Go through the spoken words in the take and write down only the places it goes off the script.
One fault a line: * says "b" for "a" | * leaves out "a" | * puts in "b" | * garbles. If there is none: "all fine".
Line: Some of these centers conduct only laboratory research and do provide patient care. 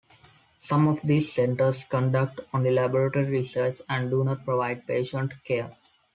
* puts in "not"